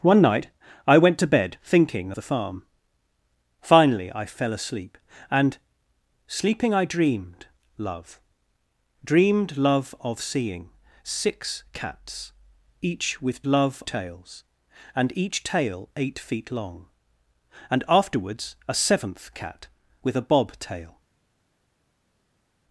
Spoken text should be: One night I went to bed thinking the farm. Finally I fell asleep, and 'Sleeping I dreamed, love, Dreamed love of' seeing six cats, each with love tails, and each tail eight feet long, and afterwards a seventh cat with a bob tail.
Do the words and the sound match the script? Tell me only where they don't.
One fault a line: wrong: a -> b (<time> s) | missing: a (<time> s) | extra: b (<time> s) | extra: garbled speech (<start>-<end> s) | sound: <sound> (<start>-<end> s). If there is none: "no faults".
no faults